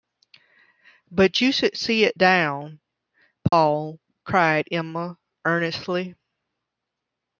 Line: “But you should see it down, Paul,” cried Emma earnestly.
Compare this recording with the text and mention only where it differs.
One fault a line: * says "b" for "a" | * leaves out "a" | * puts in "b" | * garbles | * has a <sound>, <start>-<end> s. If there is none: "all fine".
* has a dropout, 3.5-3.5 s